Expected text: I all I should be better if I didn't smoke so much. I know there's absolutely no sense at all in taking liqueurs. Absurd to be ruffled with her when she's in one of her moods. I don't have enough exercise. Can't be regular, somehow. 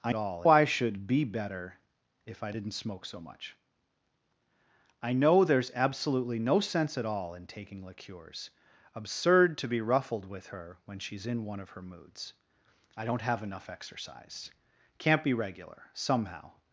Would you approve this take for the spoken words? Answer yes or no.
yes